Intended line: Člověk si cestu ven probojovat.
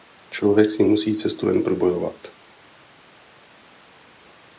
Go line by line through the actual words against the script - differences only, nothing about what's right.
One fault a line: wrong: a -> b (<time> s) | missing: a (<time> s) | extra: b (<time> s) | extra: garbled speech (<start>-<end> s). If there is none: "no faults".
extra: musí (0.8 s)